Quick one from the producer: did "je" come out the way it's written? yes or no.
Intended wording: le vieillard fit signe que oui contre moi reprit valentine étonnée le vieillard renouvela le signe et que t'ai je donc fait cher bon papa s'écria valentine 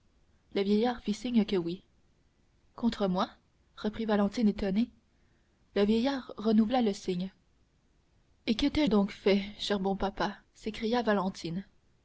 no